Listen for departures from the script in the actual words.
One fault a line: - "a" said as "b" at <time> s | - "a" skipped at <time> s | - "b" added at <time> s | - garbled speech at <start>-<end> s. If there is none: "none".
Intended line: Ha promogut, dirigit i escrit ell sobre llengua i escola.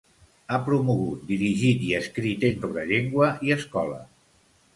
none